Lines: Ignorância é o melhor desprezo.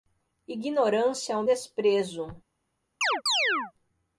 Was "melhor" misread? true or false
true